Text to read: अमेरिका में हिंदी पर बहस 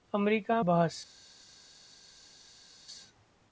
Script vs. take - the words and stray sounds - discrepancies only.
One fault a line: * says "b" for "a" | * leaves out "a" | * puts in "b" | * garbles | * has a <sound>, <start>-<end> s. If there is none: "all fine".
* leaves out "में हिंदी पर"